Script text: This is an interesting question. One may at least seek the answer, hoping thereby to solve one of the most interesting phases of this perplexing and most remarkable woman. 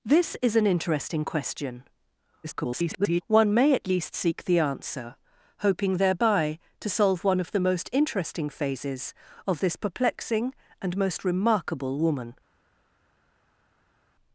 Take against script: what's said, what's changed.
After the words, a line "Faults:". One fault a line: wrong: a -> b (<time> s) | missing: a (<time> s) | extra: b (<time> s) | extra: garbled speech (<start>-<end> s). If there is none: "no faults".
This is an interesting question. [garbled] One may at least seek the answer, hoping thereby to solve one of the most interesting phases of this perplexing and most remarkable woman.
Faults:
extra: garbled speech (2.4-3.2 s)